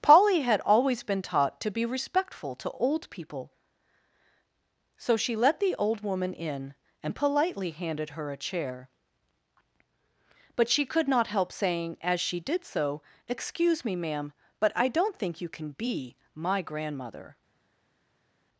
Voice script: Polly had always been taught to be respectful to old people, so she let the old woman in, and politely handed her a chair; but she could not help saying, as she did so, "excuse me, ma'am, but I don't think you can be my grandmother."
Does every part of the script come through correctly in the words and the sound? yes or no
yes